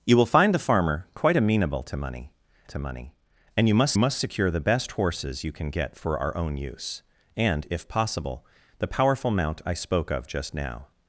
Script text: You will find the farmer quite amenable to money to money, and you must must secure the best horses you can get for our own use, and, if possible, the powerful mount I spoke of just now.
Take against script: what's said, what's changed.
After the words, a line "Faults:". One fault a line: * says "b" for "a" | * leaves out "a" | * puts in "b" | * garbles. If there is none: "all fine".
You will find the farmer quite amenable to money to money, and you must must secure the best horses you can get for our own use, and, if possible, the powerful mount I spoke of just now.
Faults:
all fine